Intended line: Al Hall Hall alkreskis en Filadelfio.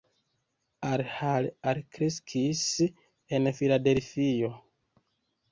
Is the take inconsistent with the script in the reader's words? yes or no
yes